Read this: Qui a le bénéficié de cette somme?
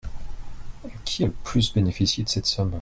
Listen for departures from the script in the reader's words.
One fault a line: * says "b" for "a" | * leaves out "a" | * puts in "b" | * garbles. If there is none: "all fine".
* puts in "plus"